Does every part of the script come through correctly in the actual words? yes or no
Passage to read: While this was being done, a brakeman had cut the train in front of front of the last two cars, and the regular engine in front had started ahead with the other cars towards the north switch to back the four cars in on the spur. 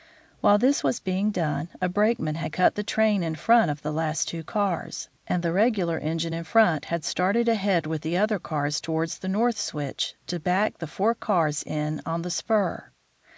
no